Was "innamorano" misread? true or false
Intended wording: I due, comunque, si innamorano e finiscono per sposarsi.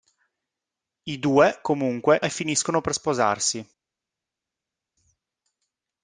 true